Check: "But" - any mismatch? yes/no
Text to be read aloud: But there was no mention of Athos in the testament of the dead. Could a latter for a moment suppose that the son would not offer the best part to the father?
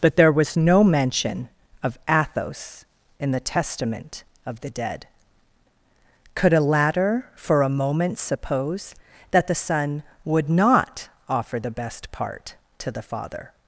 no